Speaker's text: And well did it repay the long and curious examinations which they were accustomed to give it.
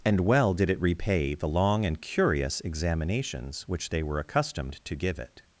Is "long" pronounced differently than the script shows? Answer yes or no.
no